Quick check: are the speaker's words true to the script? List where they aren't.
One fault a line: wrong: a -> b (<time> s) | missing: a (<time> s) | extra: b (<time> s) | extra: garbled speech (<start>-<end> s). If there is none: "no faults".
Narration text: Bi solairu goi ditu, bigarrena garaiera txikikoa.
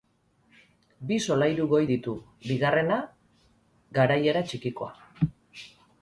no faults